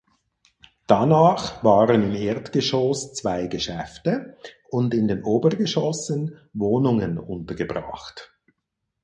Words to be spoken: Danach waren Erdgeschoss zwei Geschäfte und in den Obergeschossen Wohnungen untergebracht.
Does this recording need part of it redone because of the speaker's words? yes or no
yes